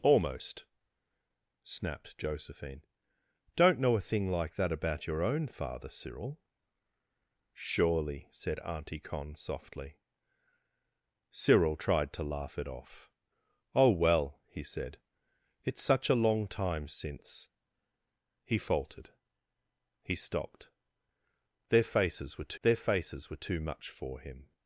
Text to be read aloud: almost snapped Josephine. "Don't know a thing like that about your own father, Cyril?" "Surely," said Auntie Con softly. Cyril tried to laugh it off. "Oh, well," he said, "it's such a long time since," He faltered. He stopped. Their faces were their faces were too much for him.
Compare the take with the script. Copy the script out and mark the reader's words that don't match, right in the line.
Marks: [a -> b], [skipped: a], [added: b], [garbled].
almost snapped Josephine. "Don't know a thing like that about your own father, Cyril?" "Surely," said Auntie Con softly. Cyril tried to laugh it off. "Oh, well," he said, "it's such a long time since," He faltered. He stopped. Their faces were their faces were too much for him.